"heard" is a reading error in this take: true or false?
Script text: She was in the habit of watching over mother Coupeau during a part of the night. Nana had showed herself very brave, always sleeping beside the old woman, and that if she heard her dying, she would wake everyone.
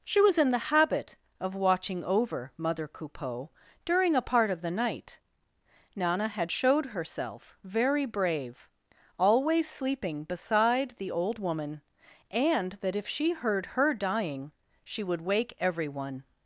false